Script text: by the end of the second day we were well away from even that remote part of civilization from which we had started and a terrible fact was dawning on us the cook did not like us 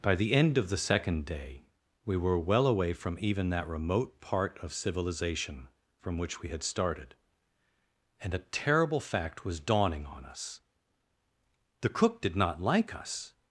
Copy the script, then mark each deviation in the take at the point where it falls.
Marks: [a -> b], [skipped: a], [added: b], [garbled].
by the end of the second day we were well away from even that remote part of civilization from which we had started and a terrible fact was dawning on us the cook did not like us